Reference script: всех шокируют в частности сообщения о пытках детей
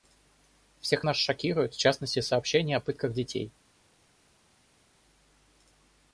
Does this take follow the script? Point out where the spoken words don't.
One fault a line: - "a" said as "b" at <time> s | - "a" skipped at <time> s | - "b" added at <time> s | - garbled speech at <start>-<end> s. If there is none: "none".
- "нас" added at 1.0 s